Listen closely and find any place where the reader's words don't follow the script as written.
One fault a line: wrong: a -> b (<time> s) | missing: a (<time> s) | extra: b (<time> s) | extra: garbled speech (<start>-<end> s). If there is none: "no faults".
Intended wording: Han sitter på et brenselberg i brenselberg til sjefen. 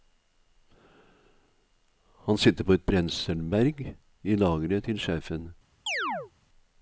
wrong: brenselberg -> lageret (4.3 s)